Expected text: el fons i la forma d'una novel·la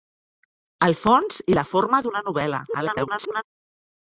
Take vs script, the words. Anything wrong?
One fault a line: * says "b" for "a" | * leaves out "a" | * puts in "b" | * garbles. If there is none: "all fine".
* garbles